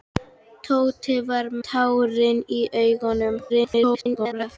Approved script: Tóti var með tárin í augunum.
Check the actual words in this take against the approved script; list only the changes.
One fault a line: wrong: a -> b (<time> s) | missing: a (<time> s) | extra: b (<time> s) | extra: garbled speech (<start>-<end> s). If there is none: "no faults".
missing: með (1.5 s)
extra: garbled speech (3.5-4.6 s)